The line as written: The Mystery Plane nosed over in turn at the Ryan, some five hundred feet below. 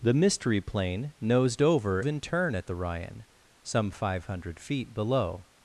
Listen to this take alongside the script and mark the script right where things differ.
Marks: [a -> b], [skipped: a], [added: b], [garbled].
The Mystery Plane nosed over in turn at the Ryan, some five hundred feet below.